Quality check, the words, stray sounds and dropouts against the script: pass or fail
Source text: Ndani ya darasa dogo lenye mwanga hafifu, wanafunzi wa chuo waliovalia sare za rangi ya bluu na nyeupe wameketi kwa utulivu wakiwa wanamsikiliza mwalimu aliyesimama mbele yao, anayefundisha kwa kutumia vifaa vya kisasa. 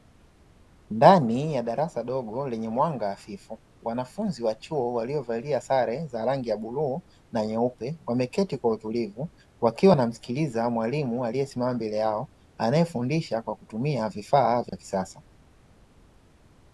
fail